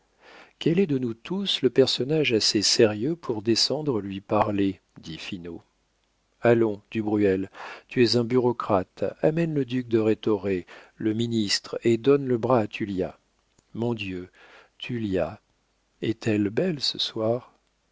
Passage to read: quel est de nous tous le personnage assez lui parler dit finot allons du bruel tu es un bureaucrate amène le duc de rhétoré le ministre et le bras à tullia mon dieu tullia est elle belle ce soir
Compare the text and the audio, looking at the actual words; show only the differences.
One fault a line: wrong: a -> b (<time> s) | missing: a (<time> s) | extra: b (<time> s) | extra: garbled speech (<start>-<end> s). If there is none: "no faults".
extra: sérieux pour descendre (2.6 s)
extra: donne (12.0 s)